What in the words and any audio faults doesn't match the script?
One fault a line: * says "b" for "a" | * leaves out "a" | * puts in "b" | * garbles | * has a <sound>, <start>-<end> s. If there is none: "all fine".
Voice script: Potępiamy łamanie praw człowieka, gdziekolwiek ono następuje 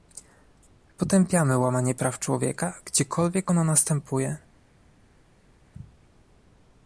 all fine